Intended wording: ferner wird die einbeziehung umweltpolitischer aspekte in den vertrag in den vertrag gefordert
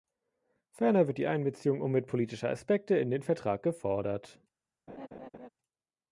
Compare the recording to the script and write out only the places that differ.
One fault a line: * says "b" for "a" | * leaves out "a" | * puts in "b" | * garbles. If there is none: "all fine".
* leaves out "in den vertrag"